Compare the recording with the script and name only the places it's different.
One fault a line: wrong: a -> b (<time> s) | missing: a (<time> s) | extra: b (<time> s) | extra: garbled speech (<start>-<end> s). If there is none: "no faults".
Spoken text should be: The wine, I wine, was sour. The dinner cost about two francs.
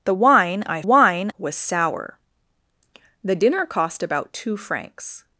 no faults